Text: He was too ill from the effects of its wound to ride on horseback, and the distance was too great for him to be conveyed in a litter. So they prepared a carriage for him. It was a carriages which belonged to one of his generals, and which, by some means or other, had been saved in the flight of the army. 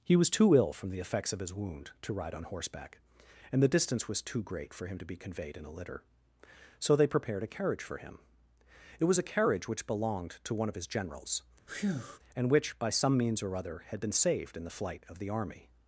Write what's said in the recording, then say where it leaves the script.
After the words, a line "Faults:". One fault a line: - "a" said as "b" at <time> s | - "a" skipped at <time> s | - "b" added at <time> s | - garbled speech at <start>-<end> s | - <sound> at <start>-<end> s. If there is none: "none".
He was too ill from the effects of his wound to ride on horseback, and the distance was too great for him to be conveyed in a litter. So they prepared a carriage for him. It was a carriage which belonged to one of his generals, and which, by some means or other, had been saved in the flight of the army.
Faults:
- "its" said as "his" at 1.4 s
- "carriages" said as "carriage" at 9.3 s
- breath at 11.7-12.2 s